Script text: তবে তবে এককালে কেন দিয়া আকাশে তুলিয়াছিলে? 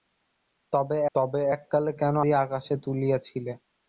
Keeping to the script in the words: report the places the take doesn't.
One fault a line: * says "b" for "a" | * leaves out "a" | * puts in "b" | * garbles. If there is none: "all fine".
all fine